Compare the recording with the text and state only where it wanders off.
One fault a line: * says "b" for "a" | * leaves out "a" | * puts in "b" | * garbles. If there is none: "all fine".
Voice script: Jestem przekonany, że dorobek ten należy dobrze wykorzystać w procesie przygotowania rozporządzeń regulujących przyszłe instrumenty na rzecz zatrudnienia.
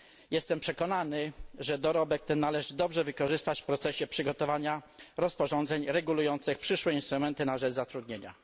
all fine